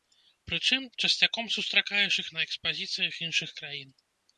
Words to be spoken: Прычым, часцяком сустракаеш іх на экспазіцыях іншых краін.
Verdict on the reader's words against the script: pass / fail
pass